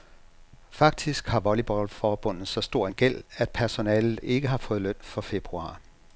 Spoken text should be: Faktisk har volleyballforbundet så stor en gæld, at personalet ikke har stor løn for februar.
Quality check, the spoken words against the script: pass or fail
fail